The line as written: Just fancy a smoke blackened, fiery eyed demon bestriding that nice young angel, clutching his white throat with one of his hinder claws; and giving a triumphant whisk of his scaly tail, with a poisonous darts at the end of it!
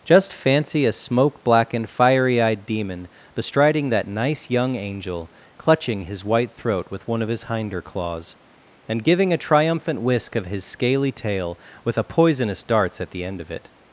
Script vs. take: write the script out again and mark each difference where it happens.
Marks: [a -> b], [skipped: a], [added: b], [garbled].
Just fancy a smoke blackened, fiery eyed demon bestriding that nice young angel, clutching his white throat with one of his hinder claws; and giving a triumphant whisk of his scaly tail, with a poisonous darts at the end of it!